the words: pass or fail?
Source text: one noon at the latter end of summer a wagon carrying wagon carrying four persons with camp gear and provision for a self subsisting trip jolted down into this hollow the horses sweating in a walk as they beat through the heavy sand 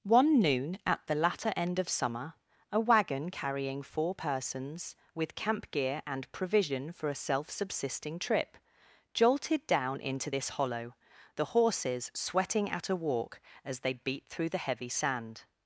fail